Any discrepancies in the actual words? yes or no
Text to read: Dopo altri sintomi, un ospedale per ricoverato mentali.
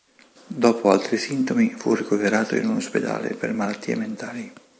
yes